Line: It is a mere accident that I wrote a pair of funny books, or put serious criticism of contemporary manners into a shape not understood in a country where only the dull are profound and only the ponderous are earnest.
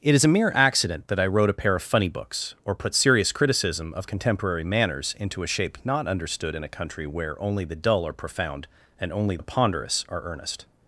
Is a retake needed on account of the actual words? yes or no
no